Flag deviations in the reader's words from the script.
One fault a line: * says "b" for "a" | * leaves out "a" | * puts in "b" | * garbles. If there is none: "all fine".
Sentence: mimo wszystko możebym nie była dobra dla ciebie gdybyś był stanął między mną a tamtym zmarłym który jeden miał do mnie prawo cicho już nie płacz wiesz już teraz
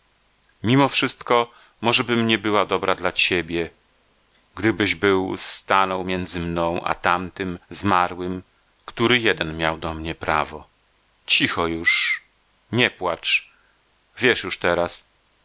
all fine